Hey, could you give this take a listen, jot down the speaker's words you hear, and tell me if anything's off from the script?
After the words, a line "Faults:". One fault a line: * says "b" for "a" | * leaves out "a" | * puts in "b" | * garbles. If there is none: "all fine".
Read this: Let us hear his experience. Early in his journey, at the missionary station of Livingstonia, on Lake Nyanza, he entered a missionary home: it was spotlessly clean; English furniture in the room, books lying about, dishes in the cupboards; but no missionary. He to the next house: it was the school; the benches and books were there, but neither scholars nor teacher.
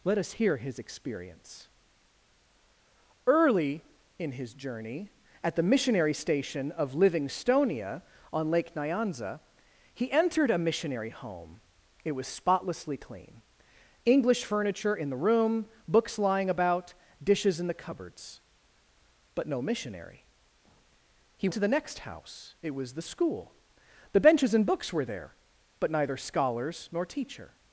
Let us hear his experience. Early in his journey, at the missionary station of Livingstonia, on Lake Nyanza, he entered a missionary home: it was spotlessly clean; English furniture in the room, books lying about, dishes in the cupboards; but no missionary. He to the next house: it was the school; the benches and books were there, but neither scholars nor teacher.
Faults:
all fine